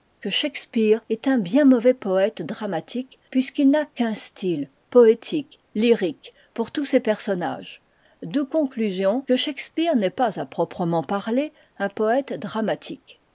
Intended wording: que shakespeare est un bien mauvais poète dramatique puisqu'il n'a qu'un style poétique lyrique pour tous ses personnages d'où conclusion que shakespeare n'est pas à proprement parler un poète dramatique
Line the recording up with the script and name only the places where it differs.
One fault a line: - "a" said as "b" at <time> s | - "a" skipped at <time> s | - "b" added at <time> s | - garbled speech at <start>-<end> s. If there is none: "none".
none